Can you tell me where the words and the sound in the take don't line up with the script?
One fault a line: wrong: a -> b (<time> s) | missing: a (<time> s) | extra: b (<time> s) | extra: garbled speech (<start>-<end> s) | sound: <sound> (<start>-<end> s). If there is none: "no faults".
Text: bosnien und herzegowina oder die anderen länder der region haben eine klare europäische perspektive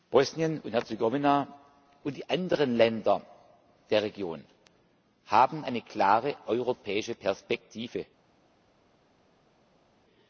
wrong: oder -> und (2.0 s)